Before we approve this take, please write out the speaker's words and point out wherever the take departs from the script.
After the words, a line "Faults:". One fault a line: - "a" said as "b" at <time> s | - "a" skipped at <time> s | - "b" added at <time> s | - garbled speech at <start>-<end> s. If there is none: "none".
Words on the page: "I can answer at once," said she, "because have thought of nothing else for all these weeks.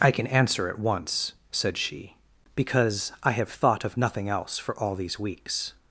"I can answer at once," said she, "because I have thought of nothing else for all these weeks.
Faults:
- "I" added at 3.2 s